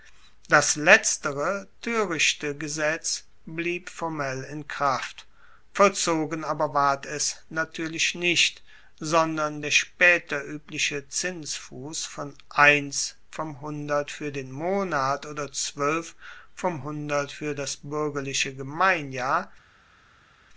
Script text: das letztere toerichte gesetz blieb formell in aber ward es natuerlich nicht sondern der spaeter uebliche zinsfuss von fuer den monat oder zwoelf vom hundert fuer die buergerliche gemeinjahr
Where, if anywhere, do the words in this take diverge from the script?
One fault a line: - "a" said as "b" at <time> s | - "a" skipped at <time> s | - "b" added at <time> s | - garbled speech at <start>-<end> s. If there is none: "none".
- "kraft vollzogen" added at 4.7 s
- "eins vom hundert" added at 12.5 s
- "die" said as "das" at 17.5 s